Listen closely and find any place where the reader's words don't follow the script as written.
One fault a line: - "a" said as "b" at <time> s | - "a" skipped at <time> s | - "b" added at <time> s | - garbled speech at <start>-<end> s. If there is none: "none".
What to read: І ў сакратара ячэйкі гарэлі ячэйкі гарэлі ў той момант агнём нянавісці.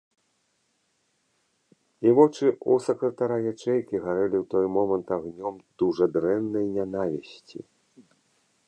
- "вочы" added at 2.2 s
- "ячэйкі гарэлі" skipped at 4.4 s
- "дужа дрэннай" added at 5.8 s